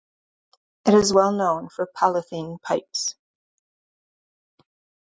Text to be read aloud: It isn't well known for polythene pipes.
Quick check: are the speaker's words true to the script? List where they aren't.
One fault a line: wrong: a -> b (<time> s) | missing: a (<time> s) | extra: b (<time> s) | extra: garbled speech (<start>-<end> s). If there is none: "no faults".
wrong: isn't -> is (0.9 s)